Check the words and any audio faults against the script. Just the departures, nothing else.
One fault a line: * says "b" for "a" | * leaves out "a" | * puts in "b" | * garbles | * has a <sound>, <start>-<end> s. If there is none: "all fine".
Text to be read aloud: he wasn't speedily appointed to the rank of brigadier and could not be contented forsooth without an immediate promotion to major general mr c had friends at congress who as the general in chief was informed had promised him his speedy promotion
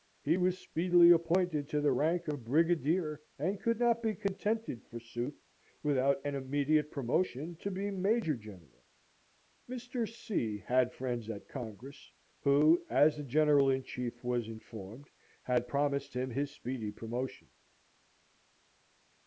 * says "was" for "wasn't"
* puts in "be"